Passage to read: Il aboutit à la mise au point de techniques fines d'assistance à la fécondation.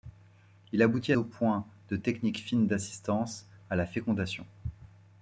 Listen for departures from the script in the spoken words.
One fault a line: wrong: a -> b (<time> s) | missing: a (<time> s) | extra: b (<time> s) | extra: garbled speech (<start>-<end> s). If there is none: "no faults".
missing: la mise (1.1 s)